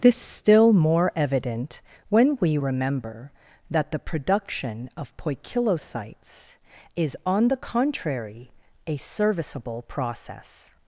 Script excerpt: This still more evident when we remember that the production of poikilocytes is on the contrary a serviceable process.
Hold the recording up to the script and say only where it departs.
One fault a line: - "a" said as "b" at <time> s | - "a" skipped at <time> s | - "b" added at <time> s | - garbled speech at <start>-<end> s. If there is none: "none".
none